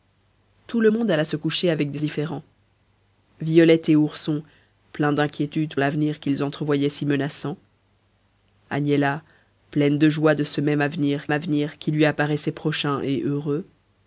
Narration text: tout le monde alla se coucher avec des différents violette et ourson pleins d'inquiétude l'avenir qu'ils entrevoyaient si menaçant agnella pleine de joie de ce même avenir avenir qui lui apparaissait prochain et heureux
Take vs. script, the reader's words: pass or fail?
pass